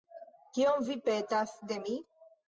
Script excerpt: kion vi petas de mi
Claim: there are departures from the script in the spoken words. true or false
false